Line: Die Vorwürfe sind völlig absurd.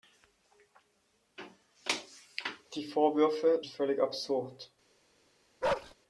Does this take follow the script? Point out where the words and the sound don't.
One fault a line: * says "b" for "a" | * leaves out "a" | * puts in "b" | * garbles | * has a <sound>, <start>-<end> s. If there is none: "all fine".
* leaves out "sind"
* has a bark, 5.6-5.9 s